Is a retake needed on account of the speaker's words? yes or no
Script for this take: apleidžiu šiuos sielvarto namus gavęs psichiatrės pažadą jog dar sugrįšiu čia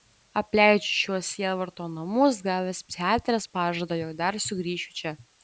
no